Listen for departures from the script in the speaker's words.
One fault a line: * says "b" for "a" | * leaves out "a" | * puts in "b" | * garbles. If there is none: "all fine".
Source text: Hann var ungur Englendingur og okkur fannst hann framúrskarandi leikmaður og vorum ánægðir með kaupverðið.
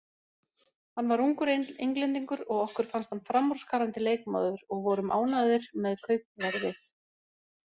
all fine